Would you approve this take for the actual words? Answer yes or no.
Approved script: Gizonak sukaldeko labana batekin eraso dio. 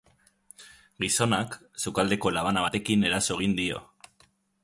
no